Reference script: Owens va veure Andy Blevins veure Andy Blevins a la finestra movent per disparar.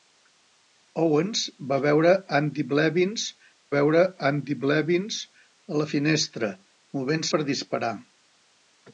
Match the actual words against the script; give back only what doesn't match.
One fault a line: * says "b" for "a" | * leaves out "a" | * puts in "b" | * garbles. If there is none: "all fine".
all fine